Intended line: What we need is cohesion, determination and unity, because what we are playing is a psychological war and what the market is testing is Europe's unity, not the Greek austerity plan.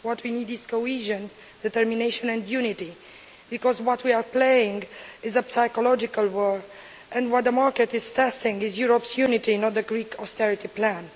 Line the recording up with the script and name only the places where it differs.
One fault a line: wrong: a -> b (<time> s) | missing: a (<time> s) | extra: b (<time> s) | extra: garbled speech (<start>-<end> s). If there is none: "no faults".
no faults